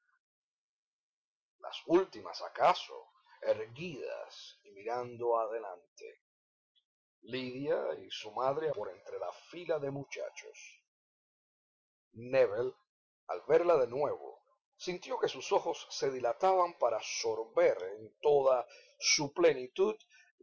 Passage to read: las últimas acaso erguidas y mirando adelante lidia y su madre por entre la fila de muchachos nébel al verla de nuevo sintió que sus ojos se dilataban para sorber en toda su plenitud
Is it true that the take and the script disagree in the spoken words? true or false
false